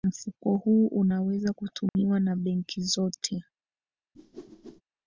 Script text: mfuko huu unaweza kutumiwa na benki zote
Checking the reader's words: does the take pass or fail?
pass